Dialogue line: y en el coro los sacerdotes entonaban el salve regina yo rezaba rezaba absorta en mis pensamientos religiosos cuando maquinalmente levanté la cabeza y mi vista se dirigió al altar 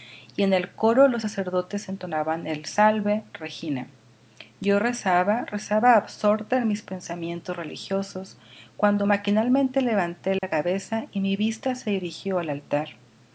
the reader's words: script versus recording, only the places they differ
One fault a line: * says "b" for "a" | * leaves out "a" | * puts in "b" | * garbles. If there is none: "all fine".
all fine